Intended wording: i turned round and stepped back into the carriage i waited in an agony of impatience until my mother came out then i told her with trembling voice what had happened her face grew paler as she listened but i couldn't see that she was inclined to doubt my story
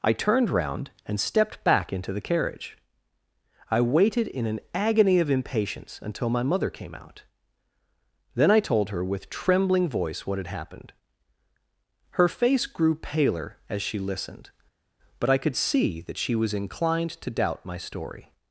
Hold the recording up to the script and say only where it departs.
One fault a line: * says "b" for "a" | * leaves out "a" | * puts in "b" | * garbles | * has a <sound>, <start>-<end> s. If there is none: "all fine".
* says "could" for "couldn't"